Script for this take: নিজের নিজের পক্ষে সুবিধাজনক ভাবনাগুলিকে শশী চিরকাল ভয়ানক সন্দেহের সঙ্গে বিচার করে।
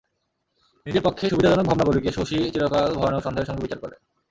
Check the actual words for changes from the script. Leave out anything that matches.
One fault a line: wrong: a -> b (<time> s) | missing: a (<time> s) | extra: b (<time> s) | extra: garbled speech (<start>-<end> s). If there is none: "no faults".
missing: নিজের (1.0 s)